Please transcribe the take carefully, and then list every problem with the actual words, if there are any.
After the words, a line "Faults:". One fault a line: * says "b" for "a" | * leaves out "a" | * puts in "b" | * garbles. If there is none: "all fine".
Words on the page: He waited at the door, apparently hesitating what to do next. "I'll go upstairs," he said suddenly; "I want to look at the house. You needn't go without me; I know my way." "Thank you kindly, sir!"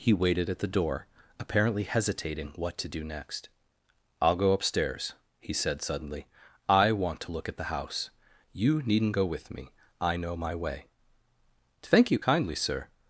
He waited at the door, apparently hesitating what to do next. "I'll go upstairs," he said suddenly; "I want to look at the house. You needn't go with me; I know my way." "Thank you kindly, sir!"
Faults:
* says "with" for "without"